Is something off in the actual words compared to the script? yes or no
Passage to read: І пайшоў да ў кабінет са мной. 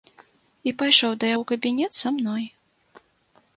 no